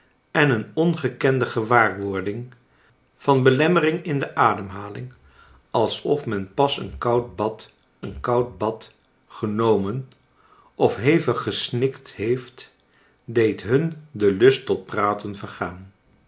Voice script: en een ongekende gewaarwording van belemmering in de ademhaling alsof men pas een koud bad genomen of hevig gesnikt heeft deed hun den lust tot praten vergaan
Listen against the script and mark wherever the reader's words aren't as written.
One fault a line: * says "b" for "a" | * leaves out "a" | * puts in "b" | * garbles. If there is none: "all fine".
* puts in "een koud bad"